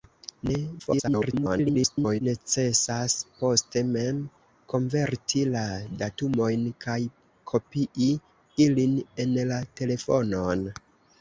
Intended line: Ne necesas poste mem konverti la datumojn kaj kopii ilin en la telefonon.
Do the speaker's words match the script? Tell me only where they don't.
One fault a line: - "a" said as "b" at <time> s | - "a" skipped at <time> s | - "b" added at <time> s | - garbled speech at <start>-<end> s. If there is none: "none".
- garbled speech at 0.8-2.2 s